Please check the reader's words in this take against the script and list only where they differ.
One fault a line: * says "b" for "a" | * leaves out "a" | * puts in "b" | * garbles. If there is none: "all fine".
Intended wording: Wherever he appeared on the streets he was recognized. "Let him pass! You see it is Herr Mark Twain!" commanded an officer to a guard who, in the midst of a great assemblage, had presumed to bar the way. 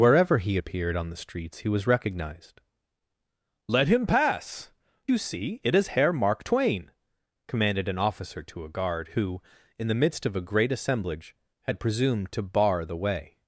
all fine